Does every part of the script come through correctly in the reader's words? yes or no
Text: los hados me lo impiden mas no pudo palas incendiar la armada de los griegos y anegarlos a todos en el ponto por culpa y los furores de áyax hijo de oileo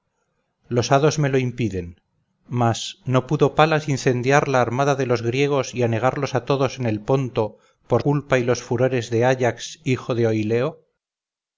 yes